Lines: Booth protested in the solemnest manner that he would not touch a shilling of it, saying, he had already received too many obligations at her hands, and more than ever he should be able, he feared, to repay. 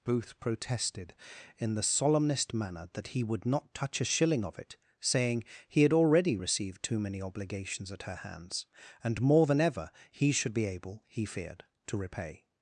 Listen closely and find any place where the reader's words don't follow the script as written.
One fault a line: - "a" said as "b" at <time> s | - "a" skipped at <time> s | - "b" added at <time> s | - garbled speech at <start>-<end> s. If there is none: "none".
none